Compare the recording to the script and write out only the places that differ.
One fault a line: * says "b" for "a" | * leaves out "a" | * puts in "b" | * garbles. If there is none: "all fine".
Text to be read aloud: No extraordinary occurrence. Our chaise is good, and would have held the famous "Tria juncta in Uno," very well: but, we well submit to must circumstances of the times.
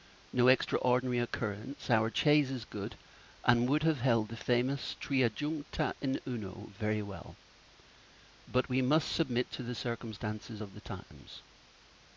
* says "must" for "well"
* says "the" for "must"